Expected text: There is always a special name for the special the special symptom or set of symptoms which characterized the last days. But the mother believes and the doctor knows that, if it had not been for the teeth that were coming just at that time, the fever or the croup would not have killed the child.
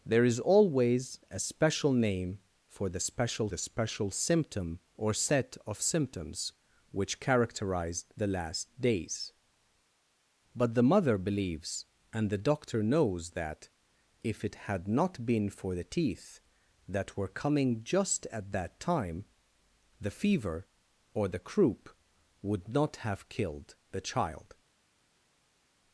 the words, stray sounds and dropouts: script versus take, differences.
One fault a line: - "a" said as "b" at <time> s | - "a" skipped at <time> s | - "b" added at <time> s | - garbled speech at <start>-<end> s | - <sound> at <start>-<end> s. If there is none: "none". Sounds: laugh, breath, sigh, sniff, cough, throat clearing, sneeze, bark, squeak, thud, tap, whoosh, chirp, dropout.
none